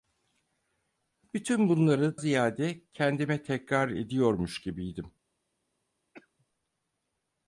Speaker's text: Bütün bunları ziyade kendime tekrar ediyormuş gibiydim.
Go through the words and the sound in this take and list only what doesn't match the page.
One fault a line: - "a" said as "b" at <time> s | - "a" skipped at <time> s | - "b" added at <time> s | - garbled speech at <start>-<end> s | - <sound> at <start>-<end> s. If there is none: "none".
- cough at 6.1-6.5 s